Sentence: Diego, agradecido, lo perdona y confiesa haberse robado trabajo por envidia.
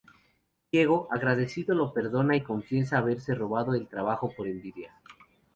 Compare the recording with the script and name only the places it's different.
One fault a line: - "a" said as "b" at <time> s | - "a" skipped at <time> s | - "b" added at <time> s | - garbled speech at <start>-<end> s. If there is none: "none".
- "el" added at 3.7 s